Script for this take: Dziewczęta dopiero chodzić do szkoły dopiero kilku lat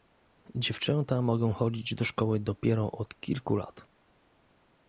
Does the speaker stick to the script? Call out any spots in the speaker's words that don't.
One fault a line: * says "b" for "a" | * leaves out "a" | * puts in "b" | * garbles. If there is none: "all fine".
* says "mogą" for "dopiero"
* puts in "od"